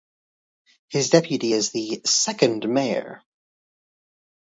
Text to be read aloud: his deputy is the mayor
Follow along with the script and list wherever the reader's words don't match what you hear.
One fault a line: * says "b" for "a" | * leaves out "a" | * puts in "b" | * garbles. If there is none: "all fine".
* puts in "second"